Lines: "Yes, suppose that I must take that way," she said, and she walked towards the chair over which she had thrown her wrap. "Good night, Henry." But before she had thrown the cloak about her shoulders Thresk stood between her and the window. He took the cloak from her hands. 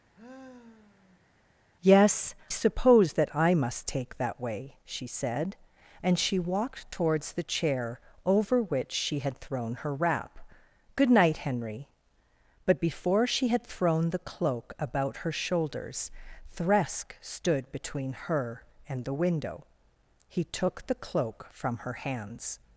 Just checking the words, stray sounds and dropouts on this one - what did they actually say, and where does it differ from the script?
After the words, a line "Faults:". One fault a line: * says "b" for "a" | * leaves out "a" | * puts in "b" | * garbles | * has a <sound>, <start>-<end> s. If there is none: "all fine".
"Yes, suppose that I must take that way," she said, and she walked towards the chair over which she had thrown her wrap. "Good night, Henry." But before she had thrown the cloak about her shoulders Thresk stood between her and the window. He took the cloak from her hands.
Faults:
* has a sigh, 0.1-1.3 s